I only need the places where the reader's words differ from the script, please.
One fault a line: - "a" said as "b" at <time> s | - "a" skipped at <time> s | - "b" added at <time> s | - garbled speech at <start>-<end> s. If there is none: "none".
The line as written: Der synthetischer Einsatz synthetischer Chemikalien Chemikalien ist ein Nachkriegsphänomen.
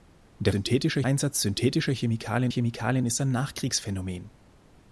none